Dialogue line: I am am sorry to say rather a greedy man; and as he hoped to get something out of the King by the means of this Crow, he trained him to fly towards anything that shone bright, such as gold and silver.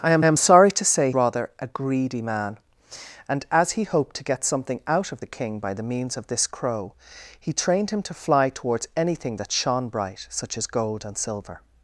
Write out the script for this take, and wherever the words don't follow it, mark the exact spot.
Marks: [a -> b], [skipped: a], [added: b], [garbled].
I am am sorry to say rather a greedy man; and as he hoped to get something out of the King by the means of this Crow, he trained him to fly towards anything that shone bright, such as gold and silver.